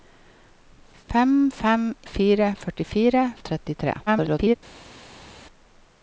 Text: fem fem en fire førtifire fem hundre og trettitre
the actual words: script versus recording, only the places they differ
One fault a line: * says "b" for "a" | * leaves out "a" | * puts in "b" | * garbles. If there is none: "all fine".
* leaves out "en"
* leaves out "fem hundre"
* garbles